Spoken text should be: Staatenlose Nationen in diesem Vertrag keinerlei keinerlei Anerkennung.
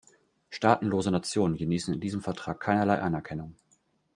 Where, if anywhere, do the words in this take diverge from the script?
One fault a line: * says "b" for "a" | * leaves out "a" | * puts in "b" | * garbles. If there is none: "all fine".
* puts in "genießen"
* leaves out "keinerlei"